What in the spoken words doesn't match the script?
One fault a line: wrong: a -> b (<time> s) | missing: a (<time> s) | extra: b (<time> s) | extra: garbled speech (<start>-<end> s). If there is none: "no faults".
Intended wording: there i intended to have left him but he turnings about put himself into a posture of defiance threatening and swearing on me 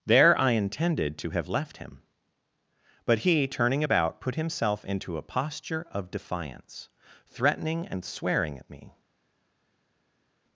wrong: turnings -> turning (3.5 s)
wrong: on -> at (8.6 s)